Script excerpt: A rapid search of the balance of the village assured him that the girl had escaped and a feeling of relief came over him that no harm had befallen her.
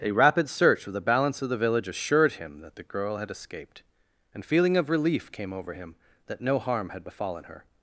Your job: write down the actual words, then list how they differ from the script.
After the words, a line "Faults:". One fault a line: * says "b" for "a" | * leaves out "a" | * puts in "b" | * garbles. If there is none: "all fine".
A rapid search of the balance of the village assured him that the girl had escaped and feeling of relief came over him that no harm had befallen her.
Faults:
* leaves out "a"